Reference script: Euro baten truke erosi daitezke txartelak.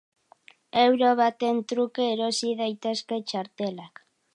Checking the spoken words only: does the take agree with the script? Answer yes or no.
yes